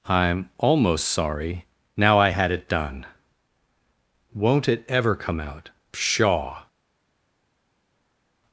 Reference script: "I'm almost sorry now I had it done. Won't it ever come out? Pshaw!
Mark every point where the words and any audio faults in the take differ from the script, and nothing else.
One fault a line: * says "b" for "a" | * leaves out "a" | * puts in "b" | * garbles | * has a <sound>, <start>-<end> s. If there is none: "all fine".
all fine